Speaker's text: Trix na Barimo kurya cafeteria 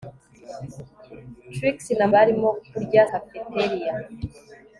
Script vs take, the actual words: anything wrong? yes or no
no